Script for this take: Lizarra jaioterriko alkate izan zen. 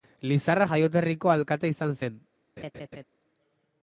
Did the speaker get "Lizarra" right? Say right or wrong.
right